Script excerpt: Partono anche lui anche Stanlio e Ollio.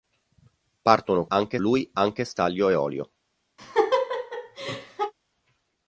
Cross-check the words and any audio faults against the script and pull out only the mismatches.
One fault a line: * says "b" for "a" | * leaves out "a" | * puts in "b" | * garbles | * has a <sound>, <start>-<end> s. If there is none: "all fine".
* has a laugh, 3.6-5.1 s